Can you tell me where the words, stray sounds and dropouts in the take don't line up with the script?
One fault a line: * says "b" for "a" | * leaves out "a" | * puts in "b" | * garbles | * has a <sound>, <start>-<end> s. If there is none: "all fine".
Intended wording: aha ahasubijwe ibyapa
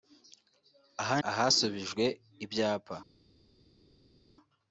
all fine